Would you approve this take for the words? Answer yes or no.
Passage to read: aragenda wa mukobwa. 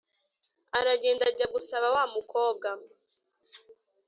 no